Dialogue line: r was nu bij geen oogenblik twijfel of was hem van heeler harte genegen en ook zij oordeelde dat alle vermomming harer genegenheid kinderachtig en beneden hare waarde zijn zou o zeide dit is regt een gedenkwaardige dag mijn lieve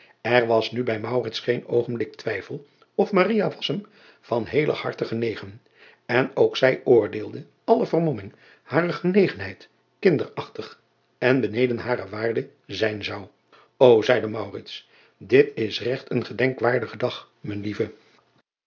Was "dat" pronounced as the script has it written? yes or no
no